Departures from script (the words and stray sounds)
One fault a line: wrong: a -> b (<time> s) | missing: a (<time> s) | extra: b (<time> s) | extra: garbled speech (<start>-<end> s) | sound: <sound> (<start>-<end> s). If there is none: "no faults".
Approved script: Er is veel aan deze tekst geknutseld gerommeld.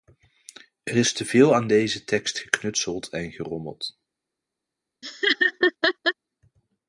extra: te (1.1 s)
extra: en (3.1 s)
sound: laugh (5.0-6.1 s)